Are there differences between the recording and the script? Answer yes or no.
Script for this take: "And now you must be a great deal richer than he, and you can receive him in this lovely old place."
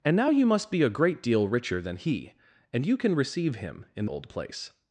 yes